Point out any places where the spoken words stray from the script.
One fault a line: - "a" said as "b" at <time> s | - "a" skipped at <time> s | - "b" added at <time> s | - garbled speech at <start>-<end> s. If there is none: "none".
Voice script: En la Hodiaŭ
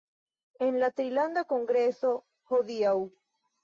- "Trilanda Kongreso" added at 1.0 s